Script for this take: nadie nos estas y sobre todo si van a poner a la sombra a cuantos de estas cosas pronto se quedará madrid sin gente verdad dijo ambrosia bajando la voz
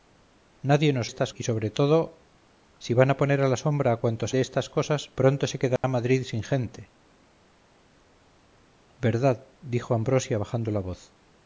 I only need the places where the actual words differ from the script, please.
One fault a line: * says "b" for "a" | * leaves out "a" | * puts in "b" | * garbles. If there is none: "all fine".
all fine